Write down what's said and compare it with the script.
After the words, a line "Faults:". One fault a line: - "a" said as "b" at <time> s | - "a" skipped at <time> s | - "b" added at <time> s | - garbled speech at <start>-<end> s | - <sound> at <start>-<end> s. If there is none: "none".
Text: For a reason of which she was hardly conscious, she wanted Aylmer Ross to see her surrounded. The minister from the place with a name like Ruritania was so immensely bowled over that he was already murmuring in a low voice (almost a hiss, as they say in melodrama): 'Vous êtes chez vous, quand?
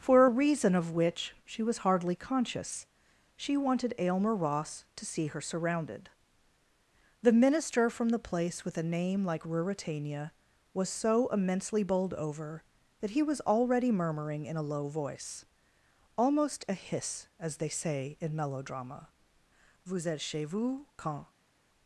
For a reason of which she was hardly conscious, she wanted Aylmer Ross to see her surrounded. The minister from the place with a name like Ruritania was so immensely bowled over that he was already murmuring in a low voice (almost a hiss, as they say in melodrama): 'Vous êtes chez vous, quand?
Faults:
none